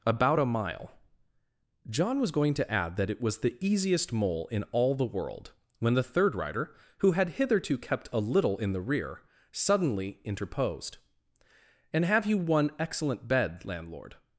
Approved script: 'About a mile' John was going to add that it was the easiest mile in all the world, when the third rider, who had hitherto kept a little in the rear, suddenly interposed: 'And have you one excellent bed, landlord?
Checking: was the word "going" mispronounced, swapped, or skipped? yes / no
no